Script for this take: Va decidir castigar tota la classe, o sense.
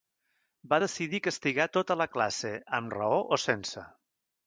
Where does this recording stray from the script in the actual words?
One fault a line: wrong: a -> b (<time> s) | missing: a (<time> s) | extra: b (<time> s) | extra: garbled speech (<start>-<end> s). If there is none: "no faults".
extra: amb raó (2.8 s)